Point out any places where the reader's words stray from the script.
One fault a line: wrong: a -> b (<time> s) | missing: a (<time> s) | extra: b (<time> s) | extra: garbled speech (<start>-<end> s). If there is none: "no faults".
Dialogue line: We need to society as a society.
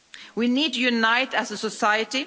wrong: society -> unite (0.8 s)